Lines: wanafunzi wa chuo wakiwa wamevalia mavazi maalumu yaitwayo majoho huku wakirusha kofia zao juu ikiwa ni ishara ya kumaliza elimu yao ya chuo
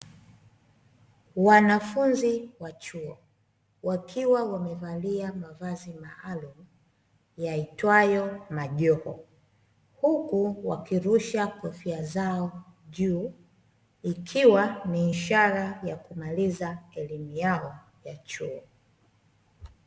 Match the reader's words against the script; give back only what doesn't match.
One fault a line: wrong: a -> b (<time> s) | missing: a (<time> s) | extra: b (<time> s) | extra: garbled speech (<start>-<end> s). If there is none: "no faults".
no faults